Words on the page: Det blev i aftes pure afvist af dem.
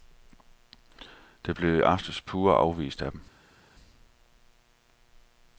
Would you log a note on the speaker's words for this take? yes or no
no